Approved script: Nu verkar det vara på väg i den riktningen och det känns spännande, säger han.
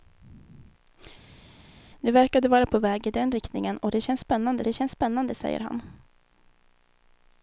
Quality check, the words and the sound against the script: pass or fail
fail